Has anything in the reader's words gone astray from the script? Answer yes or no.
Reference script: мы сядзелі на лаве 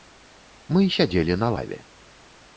no